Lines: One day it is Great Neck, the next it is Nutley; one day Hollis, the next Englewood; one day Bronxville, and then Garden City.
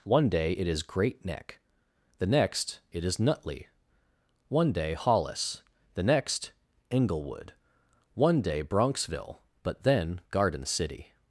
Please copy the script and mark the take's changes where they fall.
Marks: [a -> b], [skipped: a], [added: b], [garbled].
One day it is Great Neck, the next it is Nutley; one day Hollis, the next Englewood; one day Bronxville, [and -> but] then Garden City.